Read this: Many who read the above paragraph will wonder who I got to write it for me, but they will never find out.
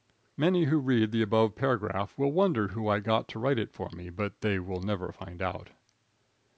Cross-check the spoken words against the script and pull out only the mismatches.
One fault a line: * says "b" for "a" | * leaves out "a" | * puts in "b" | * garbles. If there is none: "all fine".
all fine